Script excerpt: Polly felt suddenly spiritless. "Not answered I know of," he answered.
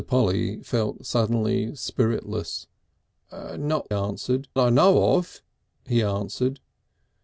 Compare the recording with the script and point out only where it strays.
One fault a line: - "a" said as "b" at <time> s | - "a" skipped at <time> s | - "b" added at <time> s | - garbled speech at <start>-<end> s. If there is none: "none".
none